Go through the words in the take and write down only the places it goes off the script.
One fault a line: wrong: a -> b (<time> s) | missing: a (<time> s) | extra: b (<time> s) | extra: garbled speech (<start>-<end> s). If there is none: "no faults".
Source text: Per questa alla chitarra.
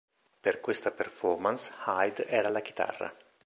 extra: performance Hyde era (0.9 s)